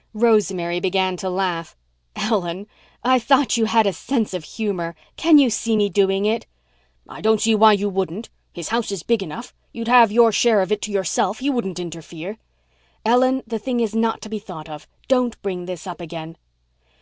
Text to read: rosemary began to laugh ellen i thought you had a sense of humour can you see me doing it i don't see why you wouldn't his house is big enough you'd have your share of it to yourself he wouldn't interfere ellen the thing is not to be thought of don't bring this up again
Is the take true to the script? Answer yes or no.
yes